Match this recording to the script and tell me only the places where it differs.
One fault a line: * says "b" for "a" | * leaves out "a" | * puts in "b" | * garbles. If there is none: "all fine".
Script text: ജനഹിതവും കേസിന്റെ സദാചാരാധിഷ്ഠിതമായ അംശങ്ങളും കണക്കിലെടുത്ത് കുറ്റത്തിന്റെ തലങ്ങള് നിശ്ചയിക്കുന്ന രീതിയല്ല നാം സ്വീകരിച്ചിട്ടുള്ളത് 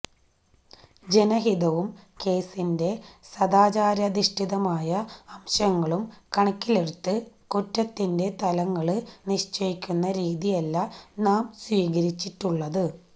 all fine